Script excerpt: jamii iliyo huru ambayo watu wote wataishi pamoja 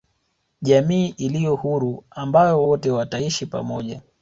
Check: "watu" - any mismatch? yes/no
yes